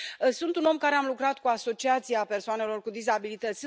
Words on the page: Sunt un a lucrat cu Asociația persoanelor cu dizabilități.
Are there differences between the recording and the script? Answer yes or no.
yes